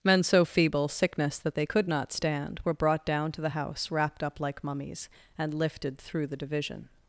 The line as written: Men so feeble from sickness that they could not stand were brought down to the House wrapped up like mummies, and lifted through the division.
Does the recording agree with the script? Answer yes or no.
no